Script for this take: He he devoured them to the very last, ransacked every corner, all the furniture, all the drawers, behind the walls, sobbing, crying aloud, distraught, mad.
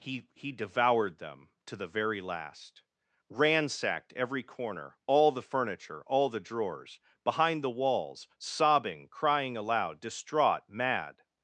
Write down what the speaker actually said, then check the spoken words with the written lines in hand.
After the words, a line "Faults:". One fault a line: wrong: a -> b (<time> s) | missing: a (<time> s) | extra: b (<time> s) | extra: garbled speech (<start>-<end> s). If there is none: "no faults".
He he devoured them to the very last, ransacked every corner, all the furniture, all the drawers, behind the walls, sobbing, crying aloud, distraught, mad.
Faults:
no faults